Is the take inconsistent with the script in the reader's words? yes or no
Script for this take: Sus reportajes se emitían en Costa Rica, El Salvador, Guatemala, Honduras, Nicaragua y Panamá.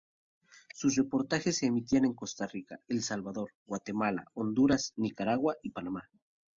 no